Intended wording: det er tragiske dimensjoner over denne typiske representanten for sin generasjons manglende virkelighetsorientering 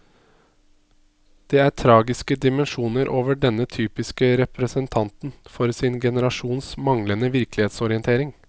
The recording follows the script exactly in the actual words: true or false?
true